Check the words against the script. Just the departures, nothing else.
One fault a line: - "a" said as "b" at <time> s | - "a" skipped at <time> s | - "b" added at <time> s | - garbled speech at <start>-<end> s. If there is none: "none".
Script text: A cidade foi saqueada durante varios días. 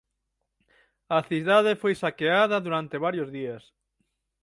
none